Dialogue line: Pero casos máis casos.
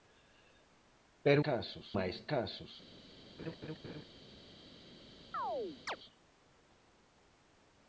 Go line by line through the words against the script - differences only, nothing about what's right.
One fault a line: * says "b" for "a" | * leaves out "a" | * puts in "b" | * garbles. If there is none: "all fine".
all fine